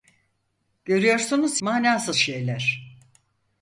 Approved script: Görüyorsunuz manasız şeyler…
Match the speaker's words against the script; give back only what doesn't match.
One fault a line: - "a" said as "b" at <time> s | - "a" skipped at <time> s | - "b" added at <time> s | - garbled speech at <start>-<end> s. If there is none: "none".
none